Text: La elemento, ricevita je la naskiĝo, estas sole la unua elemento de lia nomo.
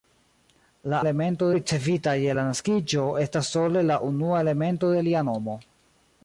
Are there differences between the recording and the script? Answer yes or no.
no